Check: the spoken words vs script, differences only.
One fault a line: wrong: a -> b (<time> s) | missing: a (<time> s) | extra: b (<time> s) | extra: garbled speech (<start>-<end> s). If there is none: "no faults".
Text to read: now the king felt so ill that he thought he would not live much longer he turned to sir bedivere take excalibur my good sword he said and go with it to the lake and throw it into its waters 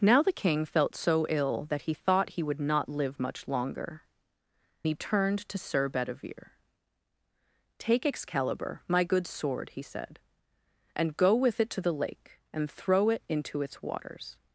no faults